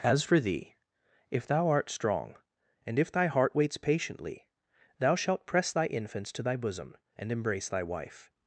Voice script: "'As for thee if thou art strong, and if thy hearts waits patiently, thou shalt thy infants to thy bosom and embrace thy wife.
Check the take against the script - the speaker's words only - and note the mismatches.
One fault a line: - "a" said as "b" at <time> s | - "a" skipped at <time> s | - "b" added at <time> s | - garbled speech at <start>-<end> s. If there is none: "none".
- "hearts" said as "heart" at 3.3 s
- "press" added at 5.5 s